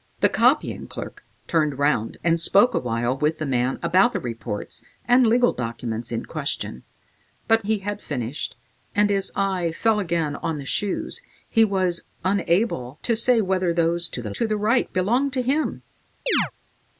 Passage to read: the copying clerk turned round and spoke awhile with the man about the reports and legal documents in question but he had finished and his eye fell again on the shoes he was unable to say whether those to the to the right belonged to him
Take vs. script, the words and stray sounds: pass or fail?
fail